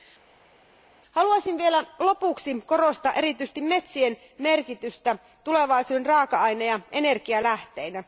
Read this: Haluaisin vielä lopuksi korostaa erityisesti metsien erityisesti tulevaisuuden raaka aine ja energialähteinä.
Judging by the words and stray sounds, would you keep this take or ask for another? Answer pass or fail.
fail